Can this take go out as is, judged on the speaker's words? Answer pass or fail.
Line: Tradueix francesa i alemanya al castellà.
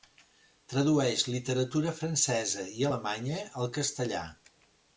fail